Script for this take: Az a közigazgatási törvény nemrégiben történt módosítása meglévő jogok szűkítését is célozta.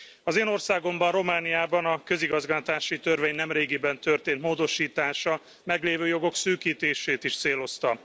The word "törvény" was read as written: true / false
true